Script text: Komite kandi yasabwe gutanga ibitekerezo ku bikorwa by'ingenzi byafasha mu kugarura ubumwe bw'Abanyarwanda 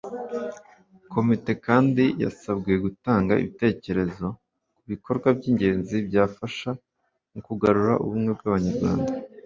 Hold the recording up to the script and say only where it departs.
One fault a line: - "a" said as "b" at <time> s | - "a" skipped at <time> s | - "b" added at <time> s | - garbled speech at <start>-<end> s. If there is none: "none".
none